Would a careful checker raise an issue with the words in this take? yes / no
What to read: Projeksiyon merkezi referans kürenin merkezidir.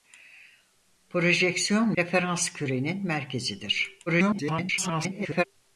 yes